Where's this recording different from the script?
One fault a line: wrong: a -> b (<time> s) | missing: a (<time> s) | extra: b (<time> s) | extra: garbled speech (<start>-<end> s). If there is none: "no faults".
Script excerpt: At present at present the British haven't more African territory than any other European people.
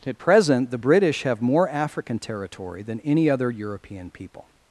missing: at present (0.7 s)
wrong: haven't -> have (1.2 s)